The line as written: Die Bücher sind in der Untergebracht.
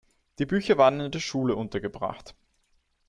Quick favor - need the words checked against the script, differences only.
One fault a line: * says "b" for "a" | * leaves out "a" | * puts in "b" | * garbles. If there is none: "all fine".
* says "waren" for "sind"
* puts in "Schule"